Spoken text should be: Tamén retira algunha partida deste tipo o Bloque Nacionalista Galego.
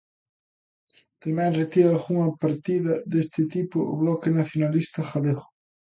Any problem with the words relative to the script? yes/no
no